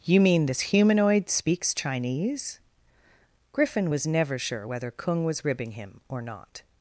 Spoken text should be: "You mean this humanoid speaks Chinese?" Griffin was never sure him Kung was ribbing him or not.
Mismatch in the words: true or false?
true